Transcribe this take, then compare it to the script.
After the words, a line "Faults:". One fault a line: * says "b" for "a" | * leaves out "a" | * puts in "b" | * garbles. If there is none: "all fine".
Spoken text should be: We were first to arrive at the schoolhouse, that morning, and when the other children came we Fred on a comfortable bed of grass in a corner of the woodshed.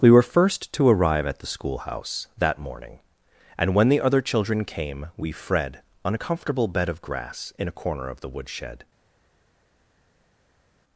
We were first to arrive at the schoolhouse, that morning, and when the other children came we Fred on a comfortable bed of grass in a corner of the woodshed.
Faults:
all fine